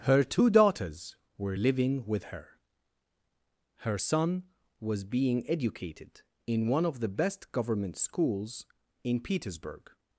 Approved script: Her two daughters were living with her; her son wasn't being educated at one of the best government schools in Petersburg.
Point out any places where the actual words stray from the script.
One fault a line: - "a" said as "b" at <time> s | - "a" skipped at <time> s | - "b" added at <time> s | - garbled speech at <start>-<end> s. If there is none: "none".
- "wasn't" said as "was" at 4.8 s
- "at" said as "in" at 6.5 s